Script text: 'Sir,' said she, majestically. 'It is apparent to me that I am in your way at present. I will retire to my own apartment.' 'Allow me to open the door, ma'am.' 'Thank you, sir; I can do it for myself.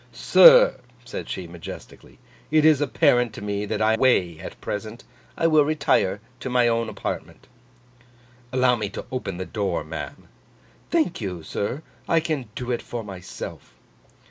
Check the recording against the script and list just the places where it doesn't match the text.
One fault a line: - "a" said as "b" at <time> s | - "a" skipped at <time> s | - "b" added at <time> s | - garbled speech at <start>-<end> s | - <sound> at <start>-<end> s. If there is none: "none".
- "am in your" skipped at 3.9 s